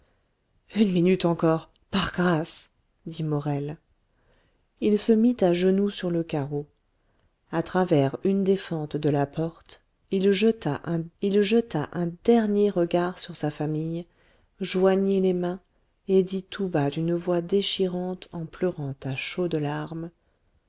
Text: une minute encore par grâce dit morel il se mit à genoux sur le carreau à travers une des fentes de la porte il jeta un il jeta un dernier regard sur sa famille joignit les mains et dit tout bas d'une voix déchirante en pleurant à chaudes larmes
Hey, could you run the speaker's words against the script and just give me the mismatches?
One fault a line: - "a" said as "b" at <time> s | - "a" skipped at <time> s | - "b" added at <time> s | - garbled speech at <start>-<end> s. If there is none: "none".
none